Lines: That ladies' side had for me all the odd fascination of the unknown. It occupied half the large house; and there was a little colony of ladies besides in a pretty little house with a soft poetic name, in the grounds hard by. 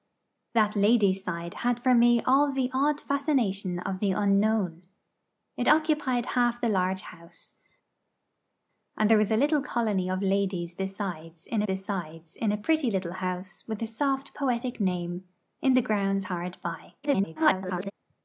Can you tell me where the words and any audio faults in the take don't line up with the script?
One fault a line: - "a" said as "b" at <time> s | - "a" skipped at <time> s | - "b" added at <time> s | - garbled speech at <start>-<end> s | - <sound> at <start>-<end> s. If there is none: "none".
- "besides in" added at 11.6 s
- garbled speech at 17.0-17.9 s